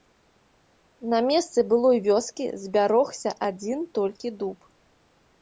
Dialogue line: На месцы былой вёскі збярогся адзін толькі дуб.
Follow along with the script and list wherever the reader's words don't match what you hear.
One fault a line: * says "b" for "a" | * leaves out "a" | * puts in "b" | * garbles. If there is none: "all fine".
all fine